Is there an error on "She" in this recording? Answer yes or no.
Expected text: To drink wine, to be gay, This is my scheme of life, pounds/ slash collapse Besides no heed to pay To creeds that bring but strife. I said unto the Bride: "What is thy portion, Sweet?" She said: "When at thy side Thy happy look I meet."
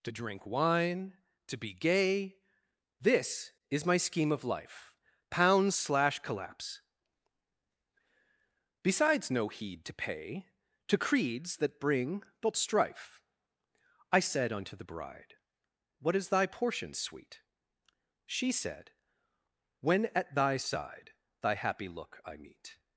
no